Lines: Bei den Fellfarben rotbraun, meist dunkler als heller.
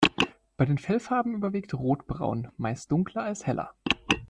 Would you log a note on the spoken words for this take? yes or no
yes